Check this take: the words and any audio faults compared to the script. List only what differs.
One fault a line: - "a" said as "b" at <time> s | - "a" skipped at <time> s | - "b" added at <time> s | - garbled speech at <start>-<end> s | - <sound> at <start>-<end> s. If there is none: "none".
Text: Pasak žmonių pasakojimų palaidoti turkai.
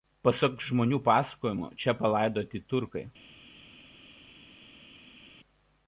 - "čia" added at 1.8 s